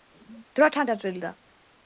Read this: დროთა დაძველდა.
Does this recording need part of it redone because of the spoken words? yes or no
no